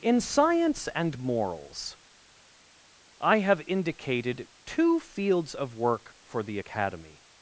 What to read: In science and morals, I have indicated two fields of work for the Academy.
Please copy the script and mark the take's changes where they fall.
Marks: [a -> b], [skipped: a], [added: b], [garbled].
In science and morals, I have indicated two fields of work for the Academy.